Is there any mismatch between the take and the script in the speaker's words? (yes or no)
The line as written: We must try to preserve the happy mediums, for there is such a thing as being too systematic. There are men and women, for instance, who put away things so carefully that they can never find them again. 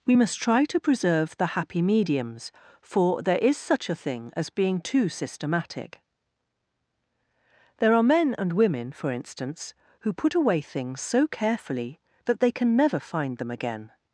no